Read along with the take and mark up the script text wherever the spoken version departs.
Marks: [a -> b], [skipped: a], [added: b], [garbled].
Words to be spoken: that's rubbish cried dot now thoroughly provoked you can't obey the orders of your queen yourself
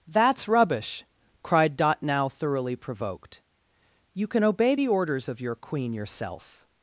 that's rubbish cried dot now thoroughly provoked you [can't -> can] obey the orders of your queen yourself